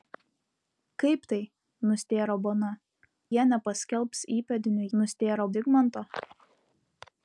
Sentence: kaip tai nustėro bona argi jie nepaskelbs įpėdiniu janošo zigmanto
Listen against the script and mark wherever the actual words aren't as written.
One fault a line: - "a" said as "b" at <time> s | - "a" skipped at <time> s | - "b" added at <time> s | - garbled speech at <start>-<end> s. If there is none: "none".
- "argi" skipped at 2.7 s
- "janošo" said as "nustėro" at 5.0 s